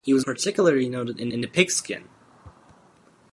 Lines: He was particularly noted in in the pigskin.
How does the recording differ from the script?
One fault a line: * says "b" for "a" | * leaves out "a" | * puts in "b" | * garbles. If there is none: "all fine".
all fine